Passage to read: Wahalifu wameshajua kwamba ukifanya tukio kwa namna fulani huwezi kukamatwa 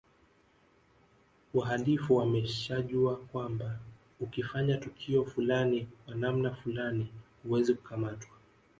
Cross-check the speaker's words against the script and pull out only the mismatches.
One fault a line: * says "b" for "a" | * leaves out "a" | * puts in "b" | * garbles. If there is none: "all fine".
* puts in "fulani"